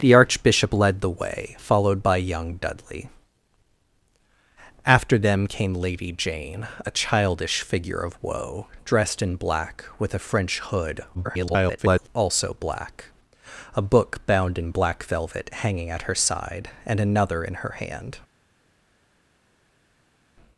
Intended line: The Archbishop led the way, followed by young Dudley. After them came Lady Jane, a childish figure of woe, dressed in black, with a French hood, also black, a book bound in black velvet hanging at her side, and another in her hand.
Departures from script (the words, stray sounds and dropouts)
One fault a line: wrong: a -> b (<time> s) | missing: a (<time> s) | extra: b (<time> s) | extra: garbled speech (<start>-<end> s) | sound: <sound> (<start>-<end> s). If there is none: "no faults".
extra: garbled speech (11.1-12.1 s)